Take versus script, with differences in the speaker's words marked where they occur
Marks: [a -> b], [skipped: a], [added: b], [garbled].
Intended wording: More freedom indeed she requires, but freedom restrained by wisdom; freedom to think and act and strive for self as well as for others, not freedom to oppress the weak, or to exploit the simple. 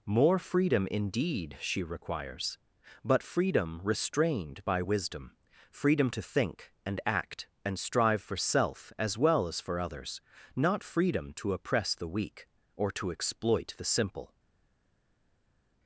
More freedom indeed she requires, but freedom restrained by wisdom; freedom to think and act and strive for self as well as for others, not freedom to oppress the weak, or to exploit the simple.